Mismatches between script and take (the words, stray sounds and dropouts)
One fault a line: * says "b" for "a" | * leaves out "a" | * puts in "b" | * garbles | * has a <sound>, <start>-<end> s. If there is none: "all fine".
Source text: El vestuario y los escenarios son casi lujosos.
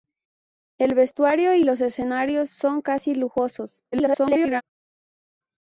* garbles